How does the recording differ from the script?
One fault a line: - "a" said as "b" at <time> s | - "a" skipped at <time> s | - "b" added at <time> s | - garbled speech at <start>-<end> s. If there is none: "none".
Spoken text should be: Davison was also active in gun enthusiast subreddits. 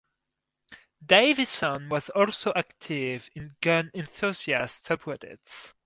none